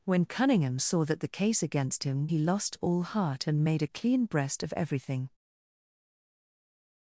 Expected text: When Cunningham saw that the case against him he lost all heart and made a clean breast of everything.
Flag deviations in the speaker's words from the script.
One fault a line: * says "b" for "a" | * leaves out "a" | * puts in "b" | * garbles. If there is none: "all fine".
all fine